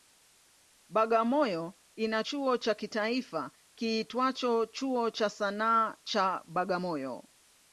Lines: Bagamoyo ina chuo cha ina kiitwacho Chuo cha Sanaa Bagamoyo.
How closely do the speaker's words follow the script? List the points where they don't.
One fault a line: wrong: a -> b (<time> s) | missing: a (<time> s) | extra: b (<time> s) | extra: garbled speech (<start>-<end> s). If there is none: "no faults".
wrong: ina -> kitaifa (2.7 s)
extra: cha (6.0 s)